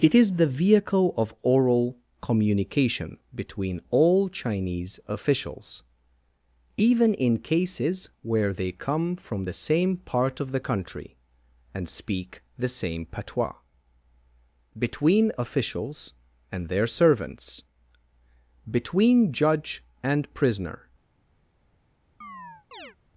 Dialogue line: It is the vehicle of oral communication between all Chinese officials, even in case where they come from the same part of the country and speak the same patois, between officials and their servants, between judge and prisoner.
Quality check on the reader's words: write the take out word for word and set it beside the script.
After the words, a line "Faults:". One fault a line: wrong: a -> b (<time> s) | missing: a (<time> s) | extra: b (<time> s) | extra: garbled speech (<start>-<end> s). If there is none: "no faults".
It is the vehicle of oral communication between all Chinese officials, even in cases where they come from the same part of the country and speak the same patois, between officials and their servants, between judge and prisoner.
Faults:
wrong: case -> cases (7.4 s)